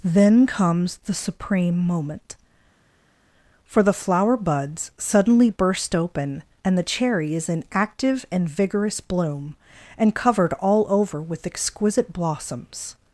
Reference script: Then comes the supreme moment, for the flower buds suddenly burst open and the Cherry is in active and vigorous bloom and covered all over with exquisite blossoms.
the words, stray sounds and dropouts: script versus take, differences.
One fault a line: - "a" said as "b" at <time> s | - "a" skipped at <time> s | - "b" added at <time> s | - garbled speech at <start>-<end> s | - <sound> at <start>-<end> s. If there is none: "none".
none